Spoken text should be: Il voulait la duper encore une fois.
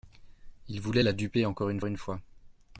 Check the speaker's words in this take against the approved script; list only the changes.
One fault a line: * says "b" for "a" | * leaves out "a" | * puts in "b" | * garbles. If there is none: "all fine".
* puts in "une"